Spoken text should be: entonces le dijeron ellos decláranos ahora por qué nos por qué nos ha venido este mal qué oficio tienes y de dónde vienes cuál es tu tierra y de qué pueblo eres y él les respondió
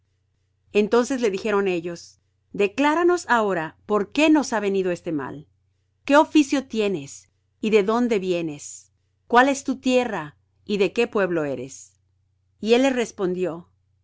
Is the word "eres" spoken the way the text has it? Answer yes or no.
yes